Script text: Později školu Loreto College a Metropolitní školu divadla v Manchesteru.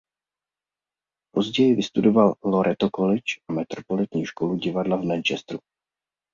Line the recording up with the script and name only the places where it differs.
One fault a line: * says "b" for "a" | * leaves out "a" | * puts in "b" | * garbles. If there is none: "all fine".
* says "vystudoval" for "školu"